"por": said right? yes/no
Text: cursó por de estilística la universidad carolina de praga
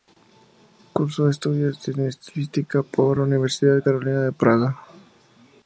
no